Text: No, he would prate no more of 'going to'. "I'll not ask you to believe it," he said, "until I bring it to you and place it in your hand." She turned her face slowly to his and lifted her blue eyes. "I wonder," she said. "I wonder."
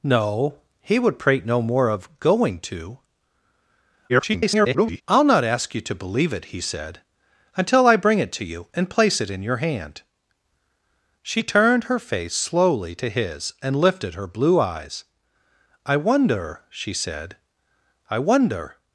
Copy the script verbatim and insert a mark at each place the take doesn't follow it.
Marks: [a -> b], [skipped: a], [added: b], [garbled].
No, he would prate no more of 'going to'. [garbled] "I'll not ask you to believe it," he said, "until I bring it to you and place it in your hand." She turned her face slowly to his and lifted her blue eyes. "I wonder," she said. "I wonder."